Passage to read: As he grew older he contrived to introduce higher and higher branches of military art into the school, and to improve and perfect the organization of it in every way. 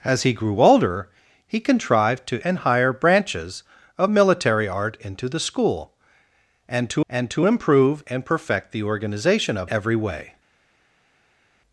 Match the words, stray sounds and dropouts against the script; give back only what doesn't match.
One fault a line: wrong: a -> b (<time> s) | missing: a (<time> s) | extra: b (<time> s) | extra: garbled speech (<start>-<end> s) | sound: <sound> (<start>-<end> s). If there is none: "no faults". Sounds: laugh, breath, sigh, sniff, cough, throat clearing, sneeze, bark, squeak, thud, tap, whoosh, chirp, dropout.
missing: introduce higher (2.4 s)
extra: and to (7.1 s)
missing: it in (9.7 s)